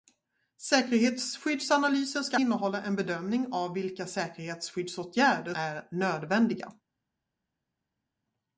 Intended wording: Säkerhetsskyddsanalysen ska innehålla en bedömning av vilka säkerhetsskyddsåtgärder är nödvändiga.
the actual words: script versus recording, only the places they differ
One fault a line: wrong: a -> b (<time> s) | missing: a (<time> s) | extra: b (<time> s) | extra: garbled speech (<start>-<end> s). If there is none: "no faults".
no faults